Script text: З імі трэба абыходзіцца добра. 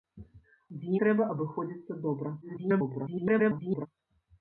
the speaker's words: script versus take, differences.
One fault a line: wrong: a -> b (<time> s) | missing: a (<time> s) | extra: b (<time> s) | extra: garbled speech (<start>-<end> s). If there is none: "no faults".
missing: імі (0.9 s)
extra: garbled speech (2.4-3.9 s)